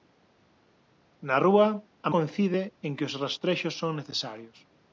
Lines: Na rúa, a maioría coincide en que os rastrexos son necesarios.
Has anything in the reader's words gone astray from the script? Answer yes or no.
yes